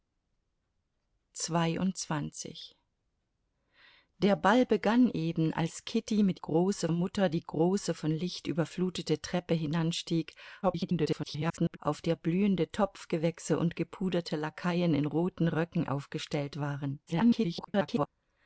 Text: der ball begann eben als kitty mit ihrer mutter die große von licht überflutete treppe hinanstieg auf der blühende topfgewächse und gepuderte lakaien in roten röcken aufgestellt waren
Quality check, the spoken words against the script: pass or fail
fail